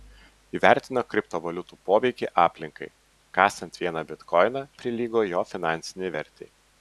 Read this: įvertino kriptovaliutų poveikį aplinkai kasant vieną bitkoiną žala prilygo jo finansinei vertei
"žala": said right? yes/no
no